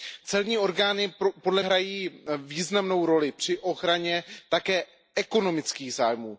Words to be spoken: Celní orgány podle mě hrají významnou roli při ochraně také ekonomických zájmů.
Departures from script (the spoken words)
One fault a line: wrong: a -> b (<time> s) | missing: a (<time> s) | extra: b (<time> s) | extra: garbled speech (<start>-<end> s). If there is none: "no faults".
missing: mě (1.6 s)